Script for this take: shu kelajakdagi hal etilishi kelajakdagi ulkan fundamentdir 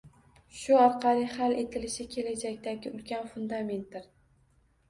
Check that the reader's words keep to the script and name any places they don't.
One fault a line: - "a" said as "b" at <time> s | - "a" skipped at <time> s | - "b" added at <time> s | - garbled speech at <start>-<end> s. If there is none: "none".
- "kelajakdagi" said as "orqali" at 0.8 s